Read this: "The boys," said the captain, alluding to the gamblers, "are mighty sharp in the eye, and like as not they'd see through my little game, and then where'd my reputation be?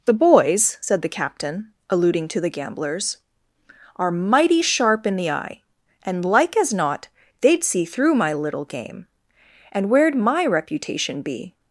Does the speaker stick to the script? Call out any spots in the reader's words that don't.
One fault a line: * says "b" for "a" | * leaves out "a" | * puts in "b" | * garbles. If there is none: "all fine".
* leaves out "then"